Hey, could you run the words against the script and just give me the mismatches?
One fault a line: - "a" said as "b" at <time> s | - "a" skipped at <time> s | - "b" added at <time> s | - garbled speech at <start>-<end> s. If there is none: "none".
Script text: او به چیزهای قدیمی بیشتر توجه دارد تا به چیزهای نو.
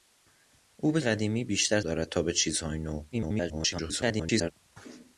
- "چیزهای" skipped at 1.0 s
- "توجه" skipped at 1.8 s
- garbled speech at 3.1-4.5 s